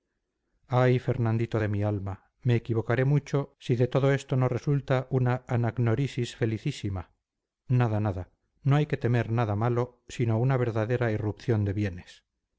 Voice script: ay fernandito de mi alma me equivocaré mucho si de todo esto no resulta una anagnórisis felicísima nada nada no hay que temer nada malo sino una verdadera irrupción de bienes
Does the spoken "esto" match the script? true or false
true